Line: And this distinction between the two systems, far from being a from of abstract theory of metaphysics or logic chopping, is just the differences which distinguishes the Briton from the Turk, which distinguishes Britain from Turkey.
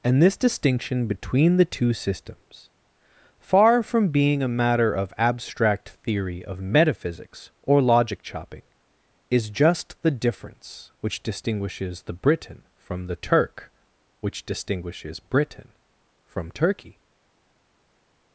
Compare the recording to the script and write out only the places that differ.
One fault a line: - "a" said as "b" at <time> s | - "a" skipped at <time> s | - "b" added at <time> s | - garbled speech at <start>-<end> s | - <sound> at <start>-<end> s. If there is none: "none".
- "from" said as "matter" at 4.5 s
- "differences" said as "difference" at 10.1 s